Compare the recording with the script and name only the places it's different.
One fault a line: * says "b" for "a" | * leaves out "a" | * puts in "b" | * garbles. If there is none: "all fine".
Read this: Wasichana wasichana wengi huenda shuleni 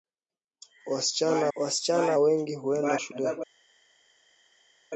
all fine